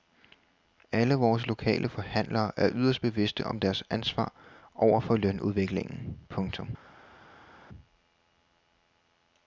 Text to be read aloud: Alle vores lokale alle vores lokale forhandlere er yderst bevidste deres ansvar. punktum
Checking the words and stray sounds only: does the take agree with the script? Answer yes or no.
no